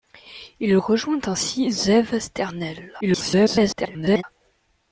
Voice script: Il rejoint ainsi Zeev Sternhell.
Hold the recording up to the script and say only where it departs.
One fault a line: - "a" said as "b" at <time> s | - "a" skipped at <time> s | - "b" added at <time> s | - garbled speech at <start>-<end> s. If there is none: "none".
- garbled speech at 3.0-4.2 s